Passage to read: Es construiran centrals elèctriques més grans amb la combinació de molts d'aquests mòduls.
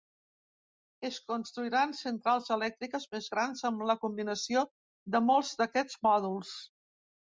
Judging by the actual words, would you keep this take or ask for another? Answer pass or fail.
pass